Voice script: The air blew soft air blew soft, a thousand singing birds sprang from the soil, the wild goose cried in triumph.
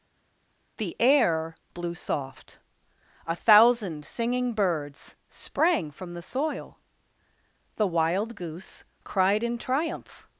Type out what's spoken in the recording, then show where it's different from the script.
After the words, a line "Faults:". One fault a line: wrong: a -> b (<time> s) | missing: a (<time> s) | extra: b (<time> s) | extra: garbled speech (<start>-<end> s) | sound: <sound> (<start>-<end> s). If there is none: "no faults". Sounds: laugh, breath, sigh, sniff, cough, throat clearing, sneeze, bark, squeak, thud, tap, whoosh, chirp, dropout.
The air blew soft, a thousand singing birds sprang from the soil, the wild goose cried in triumph.
Faults:
missing: air blew soft (2.6 s)